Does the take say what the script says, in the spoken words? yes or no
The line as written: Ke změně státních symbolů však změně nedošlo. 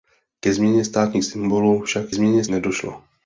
yes